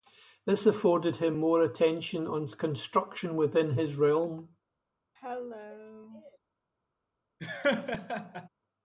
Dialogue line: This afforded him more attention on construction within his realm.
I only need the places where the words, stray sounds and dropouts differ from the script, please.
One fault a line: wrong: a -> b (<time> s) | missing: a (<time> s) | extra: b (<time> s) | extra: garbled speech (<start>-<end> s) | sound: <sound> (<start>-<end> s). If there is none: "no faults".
sound: cough (5.2-6.4 s)
sound: laugh (7.4-8.5 s)